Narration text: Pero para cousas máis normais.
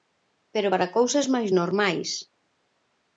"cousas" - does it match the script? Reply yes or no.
yes